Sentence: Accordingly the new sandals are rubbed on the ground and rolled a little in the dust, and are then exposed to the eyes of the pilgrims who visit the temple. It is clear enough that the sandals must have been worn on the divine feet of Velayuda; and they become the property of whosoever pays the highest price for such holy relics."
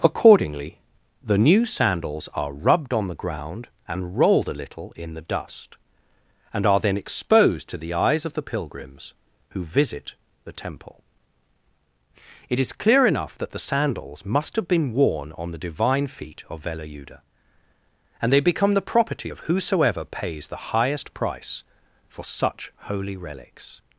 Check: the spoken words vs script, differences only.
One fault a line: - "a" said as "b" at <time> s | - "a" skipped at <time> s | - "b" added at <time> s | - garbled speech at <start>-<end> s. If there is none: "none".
none